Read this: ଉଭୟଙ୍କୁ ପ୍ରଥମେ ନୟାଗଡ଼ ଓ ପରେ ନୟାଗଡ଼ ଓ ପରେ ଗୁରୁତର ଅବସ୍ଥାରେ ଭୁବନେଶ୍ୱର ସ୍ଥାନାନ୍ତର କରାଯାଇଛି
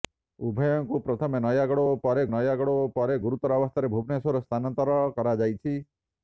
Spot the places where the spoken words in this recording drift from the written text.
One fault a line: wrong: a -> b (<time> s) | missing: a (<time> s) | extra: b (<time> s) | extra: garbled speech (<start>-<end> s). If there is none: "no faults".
no faults